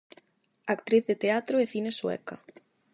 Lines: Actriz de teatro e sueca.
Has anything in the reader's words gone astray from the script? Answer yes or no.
yes